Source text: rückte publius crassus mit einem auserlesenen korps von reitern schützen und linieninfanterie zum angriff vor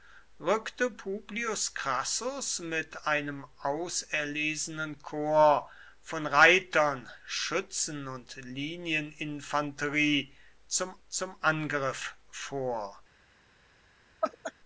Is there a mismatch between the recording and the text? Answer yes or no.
yes